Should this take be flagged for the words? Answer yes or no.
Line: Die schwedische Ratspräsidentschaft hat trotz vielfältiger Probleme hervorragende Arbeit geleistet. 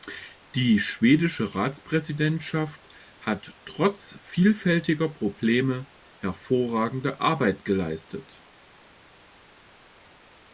no